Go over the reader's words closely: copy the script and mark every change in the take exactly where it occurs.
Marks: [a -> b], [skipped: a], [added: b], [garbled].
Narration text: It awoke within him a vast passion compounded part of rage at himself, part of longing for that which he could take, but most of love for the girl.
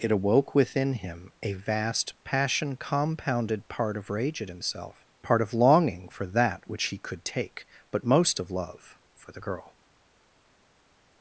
It awoke within him a vast passion compounded part of rage at himself, part of longing for that which he could take, but most of love for the girl.